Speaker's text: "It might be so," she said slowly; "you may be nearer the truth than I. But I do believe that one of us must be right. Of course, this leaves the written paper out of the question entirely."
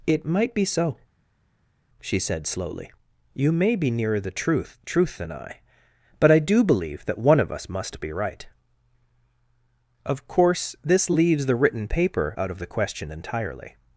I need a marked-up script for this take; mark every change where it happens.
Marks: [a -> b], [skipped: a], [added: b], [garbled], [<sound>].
"It might be so," she said slowly; "you may be nearer the truth [added: truth] than I. But I do believe that one of us must be right. Of course, this leaves the written paper out of the question entirely."